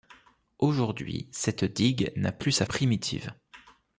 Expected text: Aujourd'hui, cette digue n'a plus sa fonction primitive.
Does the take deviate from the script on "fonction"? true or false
true